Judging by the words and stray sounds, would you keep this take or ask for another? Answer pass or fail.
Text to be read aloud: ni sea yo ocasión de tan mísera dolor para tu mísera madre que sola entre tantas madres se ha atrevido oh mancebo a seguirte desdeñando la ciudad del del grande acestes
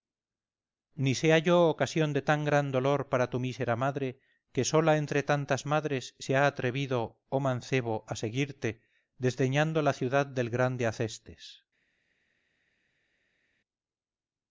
fail